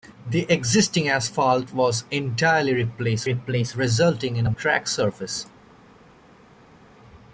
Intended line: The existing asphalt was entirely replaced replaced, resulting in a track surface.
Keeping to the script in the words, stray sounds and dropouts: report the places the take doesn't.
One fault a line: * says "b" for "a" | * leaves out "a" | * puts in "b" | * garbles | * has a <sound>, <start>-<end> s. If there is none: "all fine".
all fine